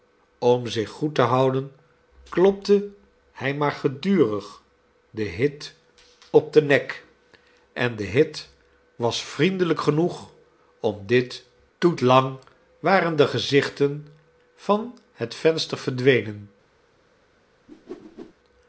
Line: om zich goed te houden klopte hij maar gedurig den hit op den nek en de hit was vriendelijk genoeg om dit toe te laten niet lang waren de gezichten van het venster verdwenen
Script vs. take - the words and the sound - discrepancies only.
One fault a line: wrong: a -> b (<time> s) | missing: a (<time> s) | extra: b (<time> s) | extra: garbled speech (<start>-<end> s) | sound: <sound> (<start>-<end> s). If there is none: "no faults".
missing: te laten niet (12.0 s)
sound: whoosh (17.7-18.3 s)